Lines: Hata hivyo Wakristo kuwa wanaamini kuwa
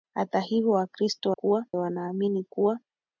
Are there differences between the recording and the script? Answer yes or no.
no